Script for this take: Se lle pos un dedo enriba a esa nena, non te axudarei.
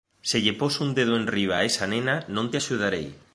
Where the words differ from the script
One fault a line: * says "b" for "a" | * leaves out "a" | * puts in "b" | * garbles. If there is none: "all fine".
all fine